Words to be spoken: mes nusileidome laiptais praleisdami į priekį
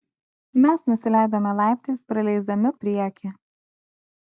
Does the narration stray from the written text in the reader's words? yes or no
no